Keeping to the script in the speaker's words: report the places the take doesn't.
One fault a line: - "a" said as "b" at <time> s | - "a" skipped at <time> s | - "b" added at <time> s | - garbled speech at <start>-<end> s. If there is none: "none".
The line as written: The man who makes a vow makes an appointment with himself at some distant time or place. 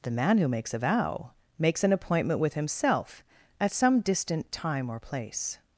none